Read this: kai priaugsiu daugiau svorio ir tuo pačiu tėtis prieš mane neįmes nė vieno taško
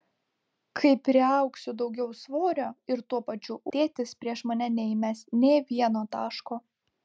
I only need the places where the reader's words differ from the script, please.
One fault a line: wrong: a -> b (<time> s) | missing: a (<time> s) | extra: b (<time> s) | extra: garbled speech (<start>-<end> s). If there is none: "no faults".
no faults